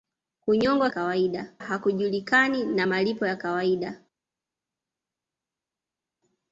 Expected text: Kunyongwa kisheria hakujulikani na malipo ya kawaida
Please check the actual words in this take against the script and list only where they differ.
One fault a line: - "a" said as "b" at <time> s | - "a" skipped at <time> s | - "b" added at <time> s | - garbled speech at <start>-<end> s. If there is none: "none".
- "kisheria" said as "kawaida" at 0.9 s